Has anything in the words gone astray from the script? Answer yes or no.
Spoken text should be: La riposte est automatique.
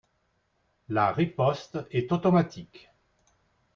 no